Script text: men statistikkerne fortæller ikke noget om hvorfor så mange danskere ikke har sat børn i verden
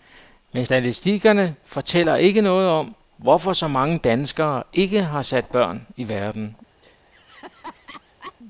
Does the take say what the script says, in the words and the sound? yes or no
no